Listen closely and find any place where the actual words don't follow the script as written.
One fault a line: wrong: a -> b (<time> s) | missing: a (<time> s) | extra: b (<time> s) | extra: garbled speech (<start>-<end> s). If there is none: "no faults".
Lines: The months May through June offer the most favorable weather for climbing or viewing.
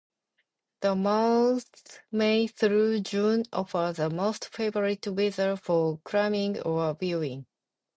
no faults